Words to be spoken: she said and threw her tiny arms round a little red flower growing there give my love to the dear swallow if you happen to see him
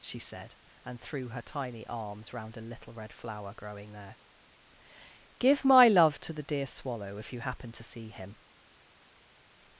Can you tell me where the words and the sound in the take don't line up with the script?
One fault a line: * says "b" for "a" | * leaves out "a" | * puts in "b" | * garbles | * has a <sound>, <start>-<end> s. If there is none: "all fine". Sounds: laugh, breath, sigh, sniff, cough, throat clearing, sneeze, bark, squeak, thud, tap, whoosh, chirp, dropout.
all fine